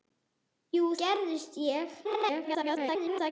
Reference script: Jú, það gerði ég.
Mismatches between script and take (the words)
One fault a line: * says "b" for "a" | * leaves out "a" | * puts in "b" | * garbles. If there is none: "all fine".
* leaves out "það"
* garbles